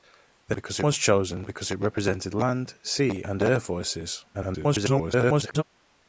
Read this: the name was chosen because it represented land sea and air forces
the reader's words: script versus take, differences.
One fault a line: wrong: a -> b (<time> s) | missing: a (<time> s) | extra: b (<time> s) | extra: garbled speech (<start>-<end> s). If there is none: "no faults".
wrong: name -> because (0.5 s)
extra: garbled speech (4.3-5.6 s)